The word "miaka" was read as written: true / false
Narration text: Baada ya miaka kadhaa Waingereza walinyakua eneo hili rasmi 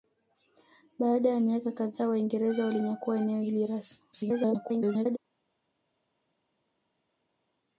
true